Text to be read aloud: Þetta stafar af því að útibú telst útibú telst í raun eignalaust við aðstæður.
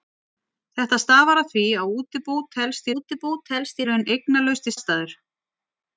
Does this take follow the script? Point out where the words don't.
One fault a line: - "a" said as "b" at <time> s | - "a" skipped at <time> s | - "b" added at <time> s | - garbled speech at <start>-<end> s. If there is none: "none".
none